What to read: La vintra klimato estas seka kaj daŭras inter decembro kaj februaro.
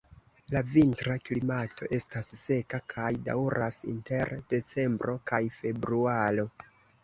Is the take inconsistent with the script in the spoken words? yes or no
no